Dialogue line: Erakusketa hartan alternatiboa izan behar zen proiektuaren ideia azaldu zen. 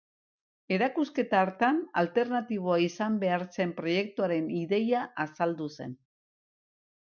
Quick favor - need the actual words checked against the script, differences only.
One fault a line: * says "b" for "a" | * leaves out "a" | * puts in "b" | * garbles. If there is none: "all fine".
all fine